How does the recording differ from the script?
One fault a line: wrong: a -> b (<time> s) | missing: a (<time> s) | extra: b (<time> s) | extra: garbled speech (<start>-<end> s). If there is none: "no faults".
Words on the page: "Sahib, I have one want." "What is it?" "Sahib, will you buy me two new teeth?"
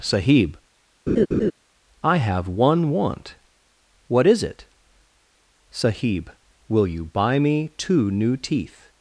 no faults